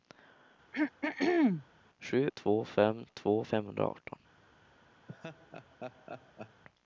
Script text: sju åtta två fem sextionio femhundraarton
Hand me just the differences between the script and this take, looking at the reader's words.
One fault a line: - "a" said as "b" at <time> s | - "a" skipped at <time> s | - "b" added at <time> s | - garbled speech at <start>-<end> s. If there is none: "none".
- "åtta" skipped at 2.3 s
- "sextionio" said as "två" at 3.1 s